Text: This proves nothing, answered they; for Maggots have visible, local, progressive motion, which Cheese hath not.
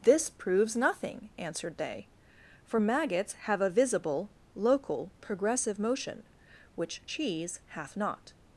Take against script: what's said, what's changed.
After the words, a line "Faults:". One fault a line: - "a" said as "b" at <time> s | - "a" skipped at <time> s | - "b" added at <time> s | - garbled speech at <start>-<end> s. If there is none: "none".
This proves nothing, answered they; for Maggots have a visible, local, progressive motion, which Cheese hath not.
Faults:
- "a" added at 3.6 s